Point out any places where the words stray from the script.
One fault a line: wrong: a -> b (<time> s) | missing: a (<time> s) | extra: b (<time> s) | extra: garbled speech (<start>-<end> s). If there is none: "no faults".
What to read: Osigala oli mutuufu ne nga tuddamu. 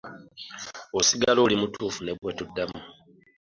wrong: nga -> bwe (2.2 s)